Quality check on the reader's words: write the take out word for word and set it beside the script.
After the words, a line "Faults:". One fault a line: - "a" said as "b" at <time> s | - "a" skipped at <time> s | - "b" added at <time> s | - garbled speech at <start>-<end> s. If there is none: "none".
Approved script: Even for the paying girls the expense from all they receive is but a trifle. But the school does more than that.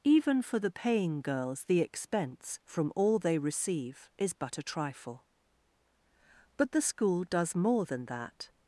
Even for the paying girls the expense from all they receive is but a trifle. But the school does more than that.
Faults:
none